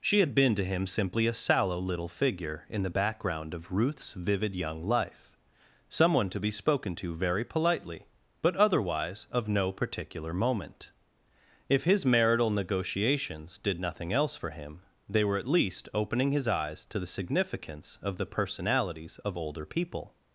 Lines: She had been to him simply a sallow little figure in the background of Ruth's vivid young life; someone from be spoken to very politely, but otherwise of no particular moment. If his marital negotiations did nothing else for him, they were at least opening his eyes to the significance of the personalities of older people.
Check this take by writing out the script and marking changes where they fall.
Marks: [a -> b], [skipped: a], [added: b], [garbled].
She had been to him simply a sallow little figure in the background of Ruth's vivid young life; someone [from -> to] be spoken to very politely, but otherwise of no particular moment. If his marital negotiations did nothing else for him, they were at least opening his eyes to the significance of the personalities of older people.